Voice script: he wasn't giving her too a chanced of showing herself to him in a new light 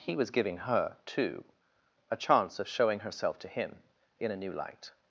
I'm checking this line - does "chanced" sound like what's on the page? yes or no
no